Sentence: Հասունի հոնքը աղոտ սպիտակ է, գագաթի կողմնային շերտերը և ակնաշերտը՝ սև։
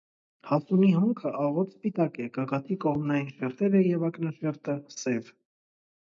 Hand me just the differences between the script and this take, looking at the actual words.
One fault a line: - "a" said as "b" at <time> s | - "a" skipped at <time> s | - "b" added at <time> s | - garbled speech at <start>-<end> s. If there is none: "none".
none